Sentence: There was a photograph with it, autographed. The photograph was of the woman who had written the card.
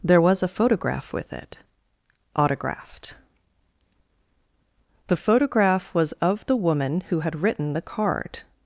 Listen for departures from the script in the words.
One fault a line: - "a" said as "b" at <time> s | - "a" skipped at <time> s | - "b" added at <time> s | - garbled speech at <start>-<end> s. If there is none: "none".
none